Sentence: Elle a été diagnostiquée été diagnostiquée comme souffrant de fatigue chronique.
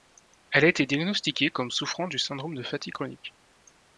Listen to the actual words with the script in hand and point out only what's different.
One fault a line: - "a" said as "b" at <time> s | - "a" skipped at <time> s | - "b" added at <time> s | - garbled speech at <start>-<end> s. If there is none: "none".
- "été diagnostiquée comme souffrant" said as "comme souffrant du syndrome" at 1.5 s